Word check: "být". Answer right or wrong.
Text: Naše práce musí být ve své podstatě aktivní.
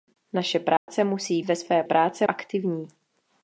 wrong